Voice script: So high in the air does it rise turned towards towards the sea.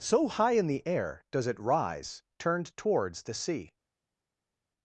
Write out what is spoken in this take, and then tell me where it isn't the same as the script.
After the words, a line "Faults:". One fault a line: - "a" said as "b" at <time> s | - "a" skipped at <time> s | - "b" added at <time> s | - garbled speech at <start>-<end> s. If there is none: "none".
So high in the air does it rise turned towards the sea.
Faults:
- "towards" skipped at 3.2 s